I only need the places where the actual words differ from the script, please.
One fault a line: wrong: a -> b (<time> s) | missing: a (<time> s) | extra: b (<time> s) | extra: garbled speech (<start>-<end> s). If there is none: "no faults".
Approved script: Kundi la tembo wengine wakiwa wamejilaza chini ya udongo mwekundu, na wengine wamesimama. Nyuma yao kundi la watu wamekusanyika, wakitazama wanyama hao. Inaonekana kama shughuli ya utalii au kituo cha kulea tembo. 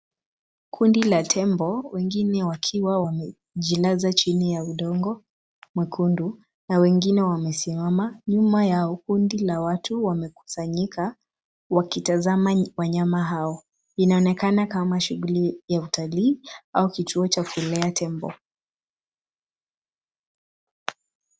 no faults